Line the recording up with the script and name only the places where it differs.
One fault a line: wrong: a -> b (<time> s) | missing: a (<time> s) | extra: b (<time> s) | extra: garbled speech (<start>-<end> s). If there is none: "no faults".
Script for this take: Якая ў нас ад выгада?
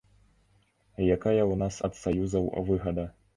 extra: саюзаў (2.0 s)